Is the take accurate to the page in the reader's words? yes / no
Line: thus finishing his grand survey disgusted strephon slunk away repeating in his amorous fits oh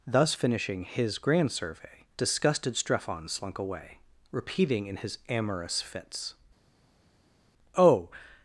yes